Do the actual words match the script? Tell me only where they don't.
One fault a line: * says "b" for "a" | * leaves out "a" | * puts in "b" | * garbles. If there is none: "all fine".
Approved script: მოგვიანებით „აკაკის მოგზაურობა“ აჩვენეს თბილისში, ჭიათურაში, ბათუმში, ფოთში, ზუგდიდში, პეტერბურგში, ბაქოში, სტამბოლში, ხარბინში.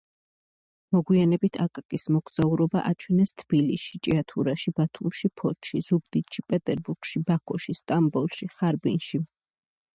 all fine